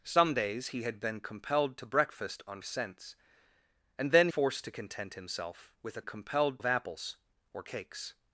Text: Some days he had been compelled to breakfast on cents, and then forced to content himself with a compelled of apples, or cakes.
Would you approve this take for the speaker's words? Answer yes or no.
yes